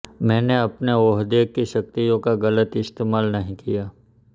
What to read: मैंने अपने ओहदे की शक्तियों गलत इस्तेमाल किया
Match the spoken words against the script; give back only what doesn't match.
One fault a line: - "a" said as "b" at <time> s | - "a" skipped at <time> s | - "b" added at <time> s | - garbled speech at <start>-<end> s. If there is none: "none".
- "का" added at 2.2 s
- "नहीं" added at 3.3 s